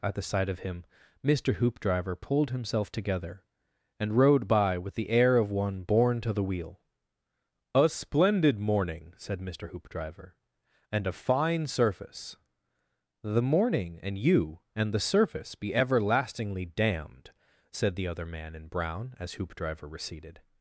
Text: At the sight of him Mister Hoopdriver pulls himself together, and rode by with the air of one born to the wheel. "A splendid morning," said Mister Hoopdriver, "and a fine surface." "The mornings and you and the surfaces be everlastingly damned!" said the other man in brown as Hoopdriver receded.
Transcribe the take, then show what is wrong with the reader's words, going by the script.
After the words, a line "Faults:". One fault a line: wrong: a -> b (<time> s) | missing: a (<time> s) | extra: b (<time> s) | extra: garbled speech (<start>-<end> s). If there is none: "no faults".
At the sight of him Mister Hoopdriver pulled himself together, and rode by with the air of one born to the wheel. "A splendid morning," said Mister Hoopdriver, "and a fine surface." "The morning and you and the surface be everlastingly damned!" said the other man in brown as Hoopdriver receded.
Faults:
wrong: pulls -> pulled (2.1 s)
wrong: mornings -> morning (13.4 s)
wrong: surfaces -> surface (15.0 s)